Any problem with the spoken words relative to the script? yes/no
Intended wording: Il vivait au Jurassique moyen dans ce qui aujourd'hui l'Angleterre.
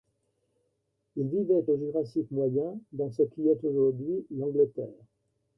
yes